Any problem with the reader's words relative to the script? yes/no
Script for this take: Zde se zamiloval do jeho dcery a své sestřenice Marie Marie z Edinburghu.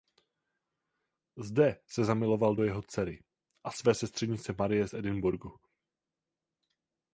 yes